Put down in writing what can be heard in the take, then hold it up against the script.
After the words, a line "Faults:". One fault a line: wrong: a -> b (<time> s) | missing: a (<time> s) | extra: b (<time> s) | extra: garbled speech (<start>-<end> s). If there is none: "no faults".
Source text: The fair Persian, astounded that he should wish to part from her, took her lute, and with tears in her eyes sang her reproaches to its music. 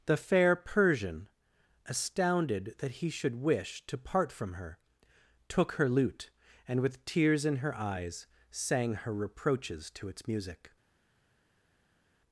The fair Persian, astounded that he should wish to part from her, took her lute, and with tears in her eyes sang her reproaches to its music.
Faults:
no faults